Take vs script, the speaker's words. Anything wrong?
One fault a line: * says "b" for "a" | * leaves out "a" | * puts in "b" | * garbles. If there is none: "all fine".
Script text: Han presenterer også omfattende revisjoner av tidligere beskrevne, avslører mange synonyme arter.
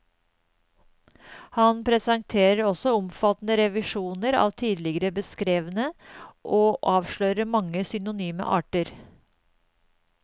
* puts in "og"